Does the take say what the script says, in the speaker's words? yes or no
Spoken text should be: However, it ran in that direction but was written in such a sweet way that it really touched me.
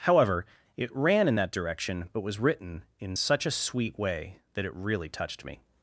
yes